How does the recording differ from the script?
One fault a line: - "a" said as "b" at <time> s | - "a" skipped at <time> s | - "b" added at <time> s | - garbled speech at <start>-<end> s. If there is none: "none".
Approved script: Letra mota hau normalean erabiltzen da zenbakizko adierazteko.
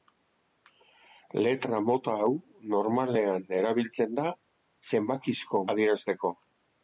none